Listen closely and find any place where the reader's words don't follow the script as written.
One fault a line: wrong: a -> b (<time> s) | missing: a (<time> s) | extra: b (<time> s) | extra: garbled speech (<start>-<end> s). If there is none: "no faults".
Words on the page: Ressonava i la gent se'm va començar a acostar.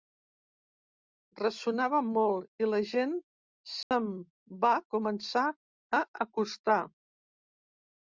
extra: molt (2.1 s)